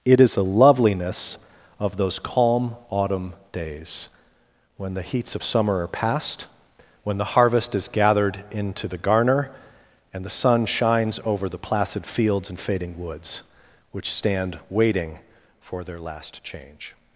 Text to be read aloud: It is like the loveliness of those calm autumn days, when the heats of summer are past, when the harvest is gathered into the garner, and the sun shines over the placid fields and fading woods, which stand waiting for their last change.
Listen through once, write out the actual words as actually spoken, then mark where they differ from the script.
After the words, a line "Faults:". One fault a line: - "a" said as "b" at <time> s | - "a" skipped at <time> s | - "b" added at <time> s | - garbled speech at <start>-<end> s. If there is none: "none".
It is the loveliness of those calm autumn days, when the heats of summer are past, when the harvest is gathered into the garner, and the sun shines over the placid fields and fading woods, which stand waiting for their last change.
Faults:
- "like" skipped at 0.4 s